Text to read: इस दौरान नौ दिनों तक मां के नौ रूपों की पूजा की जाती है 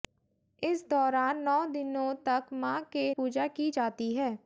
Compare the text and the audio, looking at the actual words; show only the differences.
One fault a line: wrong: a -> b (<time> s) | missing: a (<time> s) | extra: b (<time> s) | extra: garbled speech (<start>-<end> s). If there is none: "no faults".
missing: नौ रूपों की (3.0 s)